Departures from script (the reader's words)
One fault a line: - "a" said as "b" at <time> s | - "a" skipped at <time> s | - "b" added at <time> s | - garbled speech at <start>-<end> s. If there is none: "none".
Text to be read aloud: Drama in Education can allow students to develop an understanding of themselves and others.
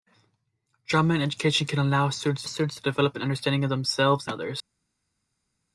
- "students" added at 2.4 s
- "and" skipped at 4.3 s